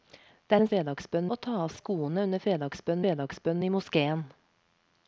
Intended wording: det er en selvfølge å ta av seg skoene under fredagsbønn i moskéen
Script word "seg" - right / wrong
wrong